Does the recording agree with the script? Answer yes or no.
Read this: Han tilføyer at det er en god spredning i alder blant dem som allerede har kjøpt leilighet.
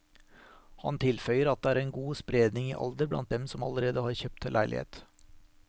yes